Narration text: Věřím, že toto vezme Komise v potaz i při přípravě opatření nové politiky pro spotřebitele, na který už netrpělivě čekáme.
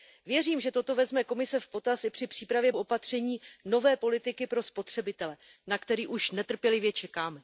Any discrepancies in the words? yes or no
no